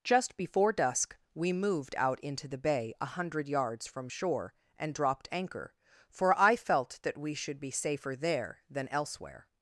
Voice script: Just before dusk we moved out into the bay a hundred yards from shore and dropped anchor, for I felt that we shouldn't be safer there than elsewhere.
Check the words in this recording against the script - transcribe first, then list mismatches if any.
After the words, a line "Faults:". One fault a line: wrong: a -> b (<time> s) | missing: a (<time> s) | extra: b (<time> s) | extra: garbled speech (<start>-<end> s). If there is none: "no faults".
Just before dusk we moved out into the bay a hundred yards from shore and dropped anchor, for I felt that we should be safer there than elsewhere.
Faults:
wrong: shouldn't -> should (7.3 s)